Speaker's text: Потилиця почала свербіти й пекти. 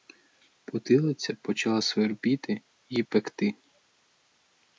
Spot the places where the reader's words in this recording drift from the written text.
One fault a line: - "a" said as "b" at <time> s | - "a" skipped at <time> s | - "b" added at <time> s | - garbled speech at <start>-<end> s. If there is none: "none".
none